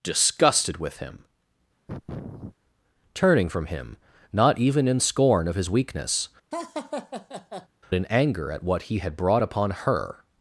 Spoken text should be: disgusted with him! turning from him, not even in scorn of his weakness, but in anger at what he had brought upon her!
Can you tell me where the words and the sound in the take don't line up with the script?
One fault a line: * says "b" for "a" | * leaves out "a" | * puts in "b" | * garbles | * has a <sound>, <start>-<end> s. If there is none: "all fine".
* has a sniff, 1.9-2.6 s
* leaves out "but"
* has a laugh, 6.5-7.7 s